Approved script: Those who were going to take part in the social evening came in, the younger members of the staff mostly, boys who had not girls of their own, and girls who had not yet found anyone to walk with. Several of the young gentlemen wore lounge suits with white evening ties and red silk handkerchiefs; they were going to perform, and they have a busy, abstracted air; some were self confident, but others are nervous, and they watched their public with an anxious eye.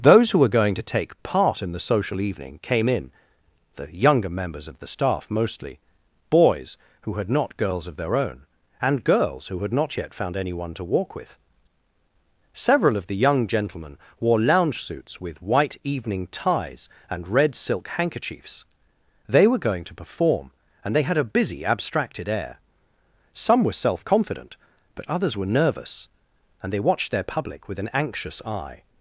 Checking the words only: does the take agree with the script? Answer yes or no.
no